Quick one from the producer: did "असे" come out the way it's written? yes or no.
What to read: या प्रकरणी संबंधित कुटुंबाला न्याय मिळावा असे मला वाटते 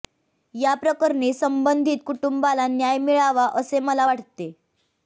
yes